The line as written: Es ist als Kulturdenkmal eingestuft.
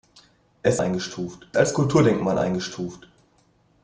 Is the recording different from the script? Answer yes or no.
yes